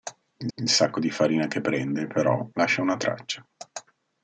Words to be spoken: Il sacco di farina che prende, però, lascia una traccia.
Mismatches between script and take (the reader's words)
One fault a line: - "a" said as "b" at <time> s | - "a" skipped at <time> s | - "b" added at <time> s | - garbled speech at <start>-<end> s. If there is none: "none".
- "il" added at 0.5 s